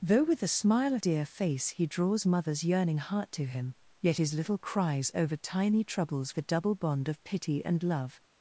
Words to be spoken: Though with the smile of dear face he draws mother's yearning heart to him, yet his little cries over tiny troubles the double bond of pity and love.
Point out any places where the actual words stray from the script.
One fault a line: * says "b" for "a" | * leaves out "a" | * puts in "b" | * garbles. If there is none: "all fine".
all fine